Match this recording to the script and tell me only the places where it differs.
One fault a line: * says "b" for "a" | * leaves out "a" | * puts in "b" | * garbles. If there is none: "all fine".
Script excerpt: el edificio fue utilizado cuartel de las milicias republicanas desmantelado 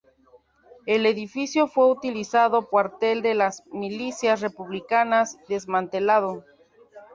all fine